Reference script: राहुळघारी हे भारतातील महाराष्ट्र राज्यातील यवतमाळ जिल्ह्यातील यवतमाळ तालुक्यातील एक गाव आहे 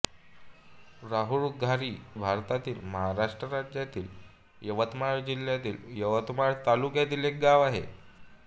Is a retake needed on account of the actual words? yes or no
yes